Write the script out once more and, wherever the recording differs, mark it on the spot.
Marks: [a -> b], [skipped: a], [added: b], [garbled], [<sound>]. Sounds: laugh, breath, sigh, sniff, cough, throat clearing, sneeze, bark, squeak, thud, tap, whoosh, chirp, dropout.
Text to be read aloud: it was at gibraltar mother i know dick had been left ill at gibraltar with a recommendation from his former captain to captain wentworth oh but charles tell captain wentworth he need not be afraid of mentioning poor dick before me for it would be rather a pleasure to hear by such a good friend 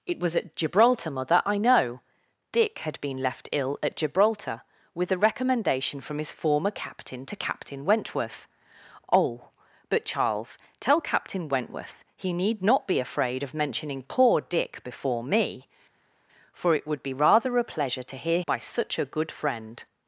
it was at gibraltar mother i know dick had been left ill at gibraltar with a recommendation from his former captain to captain wentworth oh but charles tell captain wentworth he need not be afraid of mentioning poor dick before me for it would be rather a pleasure to hear by such a good friend